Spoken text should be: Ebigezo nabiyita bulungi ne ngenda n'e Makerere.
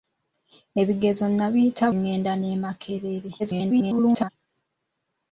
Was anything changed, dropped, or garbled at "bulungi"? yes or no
yes